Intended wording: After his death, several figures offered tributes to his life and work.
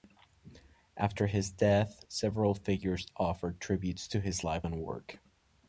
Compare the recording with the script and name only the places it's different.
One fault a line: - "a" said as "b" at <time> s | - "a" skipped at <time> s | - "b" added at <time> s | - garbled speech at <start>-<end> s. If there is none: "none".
none